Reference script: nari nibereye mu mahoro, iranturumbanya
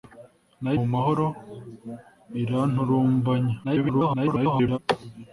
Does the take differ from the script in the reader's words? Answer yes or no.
yes